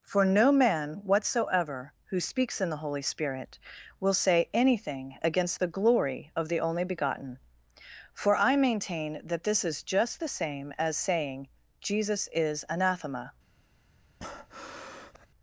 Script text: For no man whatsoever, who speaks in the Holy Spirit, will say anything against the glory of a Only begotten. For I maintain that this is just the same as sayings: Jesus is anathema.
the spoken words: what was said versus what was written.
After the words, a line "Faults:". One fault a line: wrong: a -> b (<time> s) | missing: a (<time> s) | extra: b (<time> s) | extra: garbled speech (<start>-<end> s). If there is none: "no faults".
For no man whatsoever, who speaks in the Holy Spirit, will say anything against the glory of the Only begotten. For I maintain that this is just the same as saying: Jesus is anathema.
Faults:
wrong: a -> the (6.5 s)
wrong: sayings -> saying (11.0 s)